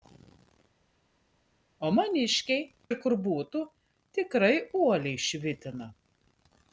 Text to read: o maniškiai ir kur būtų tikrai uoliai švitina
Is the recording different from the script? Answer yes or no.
no